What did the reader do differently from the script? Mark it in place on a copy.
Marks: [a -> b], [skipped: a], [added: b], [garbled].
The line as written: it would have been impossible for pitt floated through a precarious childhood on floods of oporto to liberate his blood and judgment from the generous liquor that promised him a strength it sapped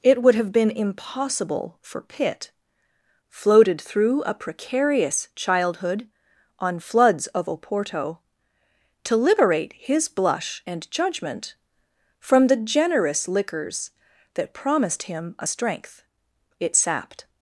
it would have been impossible for pitt floated through a precarious childhood on floods of oporto to liberate his [blood -> blush] and judgment from the generous [liquor -> liquors] that promised him a strength it sapped